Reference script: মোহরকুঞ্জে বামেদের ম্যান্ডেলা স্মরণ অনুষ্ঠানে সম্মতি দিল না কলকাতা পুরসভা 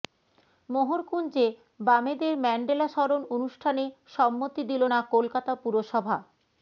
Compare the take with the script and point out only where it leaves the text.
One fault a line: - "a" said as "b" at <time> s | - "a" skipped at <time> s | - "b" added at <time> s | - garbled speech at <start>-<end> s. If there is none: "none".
none